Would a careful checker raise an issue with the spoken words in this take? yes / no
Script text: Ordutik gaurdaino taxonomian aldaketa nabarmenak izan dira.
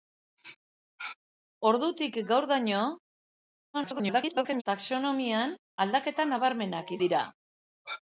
yes